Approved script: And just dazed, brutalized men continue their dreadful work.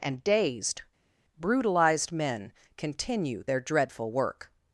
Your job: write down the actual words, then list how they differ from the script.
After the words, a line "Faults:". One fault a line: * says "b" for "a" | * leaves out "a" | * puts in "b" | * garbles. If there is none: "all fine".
And dazed, brutalized men continue their dreadful work.
Faults:
* leaves out "just"